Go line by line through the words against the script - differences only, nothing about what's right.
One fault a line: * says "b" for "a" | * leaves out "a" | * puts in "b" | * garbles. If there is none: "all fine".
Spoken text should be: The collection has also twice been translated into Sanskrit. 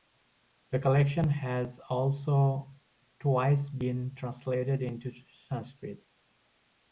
all fine